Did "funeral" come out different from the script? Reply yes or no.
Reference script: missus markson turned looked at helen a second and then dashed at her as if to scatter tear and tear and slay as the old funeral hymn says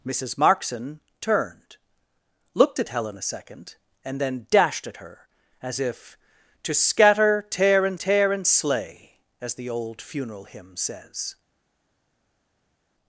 no